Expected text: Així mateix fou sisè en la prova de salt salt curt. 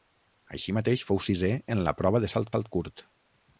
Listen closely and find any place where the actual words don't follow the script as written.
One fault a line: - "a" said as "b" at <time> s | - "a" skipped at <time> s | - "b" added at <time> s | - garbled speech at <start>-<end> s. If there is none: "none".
none